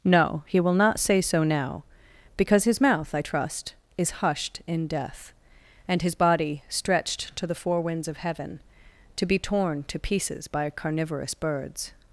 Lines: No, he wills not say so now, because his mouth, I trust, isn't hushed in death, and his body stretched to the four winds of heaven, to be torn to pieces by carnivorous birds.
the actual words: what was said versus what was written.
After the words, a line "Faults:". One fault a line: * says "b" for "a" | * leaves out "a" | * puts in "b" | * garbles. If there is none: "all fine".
No, he will not say so now, because his mouth, I trust, is hushed in death, and his body stretched to the four winds of heaven, to be torn to pieces by carnivorous birds.
Faults:
* says "will" for "wills"
* says "is" for "isn't"